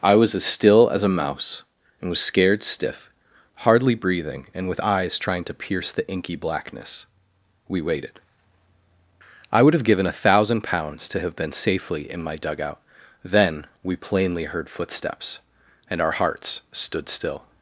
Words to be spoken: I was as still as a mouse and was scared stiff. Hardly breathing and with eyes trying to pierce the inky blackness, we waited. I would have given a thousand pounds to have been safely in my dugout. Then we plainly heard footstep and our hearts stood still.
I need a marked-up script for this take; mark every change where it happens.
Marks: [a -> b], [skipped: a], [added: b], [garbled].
I was as still as a mouse and was scared stiff. Hardly breathing and with eyes trying to pierce the inky blackness, we waited. I would have given a thousand pounds to have been safely in my dugout. Then we plainly heard [footstep -> footsteps] and our hearts stood still.